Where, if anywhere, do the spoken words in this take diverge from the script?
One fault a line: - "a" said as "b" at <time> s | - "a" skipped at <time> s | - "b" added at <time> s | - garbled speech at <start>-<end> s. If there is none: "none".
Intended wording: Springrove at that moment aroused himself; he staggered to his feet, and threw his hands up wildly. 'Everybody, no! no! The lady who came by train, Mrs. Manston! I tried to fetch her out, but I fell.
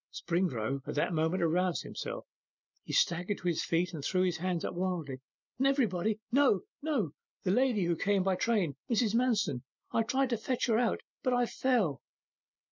none